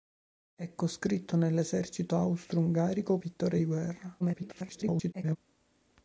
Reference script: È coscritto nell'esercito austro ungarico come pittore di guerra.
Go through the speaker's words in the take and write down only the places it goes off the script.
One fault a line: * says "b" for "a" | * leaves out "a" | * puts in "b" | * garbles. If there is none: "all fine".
* leaves out "come"
* garbles